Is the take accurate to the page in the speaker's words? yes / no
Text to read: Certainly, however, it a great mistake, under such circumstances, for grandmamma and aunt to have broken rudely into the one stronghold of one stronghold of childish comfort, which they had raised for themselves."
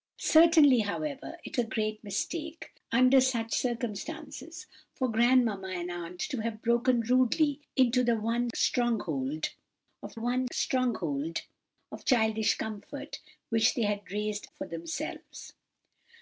yes